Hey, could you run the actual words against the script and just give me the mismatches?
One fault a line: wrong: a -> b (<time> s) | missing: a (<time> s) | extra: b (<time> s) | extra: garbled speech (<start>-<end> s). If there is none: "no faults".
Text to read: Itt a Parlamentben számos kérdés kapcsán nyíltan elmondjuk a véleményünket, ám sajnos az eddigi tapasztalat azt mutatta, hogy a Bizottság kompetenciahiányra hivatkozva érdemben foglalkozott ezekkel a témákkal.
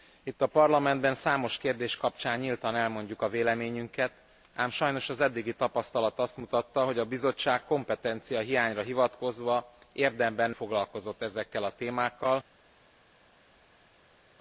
no faults